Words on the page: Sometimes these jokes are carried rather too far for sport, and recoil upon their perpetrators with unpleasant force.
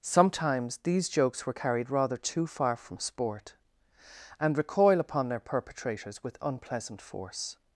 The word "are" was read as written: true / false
false